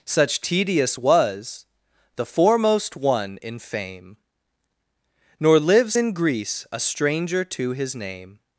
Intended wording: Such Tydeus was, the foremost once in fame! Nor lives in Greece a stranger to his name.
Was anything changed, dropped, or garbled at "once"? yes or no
yes